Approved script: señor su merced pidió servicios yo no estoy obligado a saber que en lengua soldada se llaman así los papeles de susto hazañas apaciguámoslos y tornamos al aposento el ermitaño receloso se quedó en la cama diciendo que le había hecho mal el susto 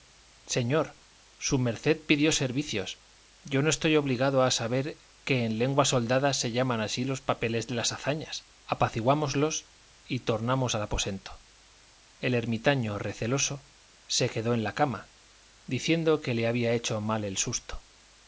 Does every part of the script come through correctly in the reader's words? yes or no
no